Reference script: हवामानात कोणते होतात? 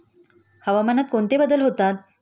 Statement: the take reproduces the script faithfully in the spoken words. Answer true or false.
false